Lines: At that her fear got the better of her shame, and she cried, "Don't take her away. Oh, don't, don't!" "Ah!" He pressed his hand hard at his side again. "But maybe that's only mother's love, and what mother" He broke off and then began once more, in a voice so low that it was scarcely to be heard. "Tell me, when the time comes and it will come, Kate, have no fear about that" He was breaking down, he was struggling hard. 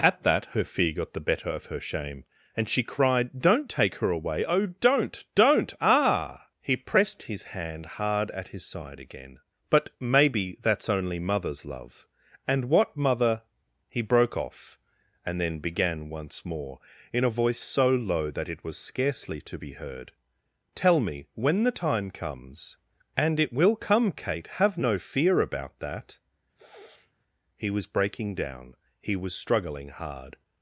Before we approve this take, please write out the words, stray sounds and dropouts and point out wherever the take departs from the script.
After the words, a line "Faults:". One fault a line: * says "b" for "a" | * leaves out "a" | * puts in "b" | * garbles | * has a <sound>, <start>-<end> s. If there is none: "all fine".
At that her fear got the better of her shame, and she cried, "Don't take her away. Oh, don't, don't!" "Ah!" He pressed his hand hard at his side again. "But maybe that's only mother's love, and what mother" He broke off and then began once more, in a voice so low that it was scarcely to be heard. "Tell me, when the time comes and it will come, Kate, have no fear about that" He was breaking down, he was struggling hard.
Faults:
* has a sniff, 26.5-27.1 s